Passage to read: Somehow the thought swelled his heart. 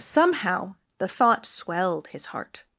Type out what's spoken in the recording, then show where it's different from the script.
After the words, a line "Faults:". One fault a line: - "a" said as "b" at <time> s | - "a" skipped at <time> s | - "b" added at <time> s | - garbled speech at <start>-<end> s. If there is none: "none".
Somehow the thought swelled his heart.
Faults:
none